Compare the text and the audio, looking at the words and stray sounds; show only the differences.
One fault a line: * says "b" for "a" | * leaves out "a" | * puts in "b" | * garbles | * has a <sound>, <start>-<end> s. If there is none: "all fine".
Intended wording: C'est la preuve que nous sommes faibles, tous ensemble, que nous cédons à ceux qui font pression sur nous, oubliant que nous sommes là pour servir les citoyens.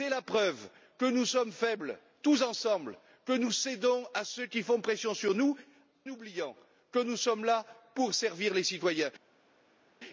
all fine